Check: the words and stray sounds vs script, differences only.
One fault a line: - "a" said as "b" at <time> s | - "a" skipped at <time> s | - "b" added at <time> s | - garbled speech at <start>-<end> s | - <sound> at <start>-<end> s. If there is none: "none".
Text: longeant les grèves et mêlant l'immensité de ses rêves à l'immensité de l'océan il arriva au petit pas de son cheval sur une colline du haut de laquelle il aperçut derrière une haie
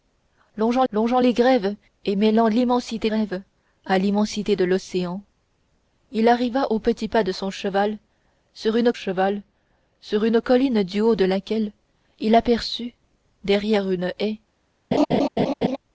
- "longeant" added at 0.9 s
- "de ses" skipped at 3.1 s
- "cheval sur une" added at 8.9 s
- laugh at 14.9-15.8 s